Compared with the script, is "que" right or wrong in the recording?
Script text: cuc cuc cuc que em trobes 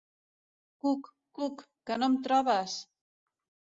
wrong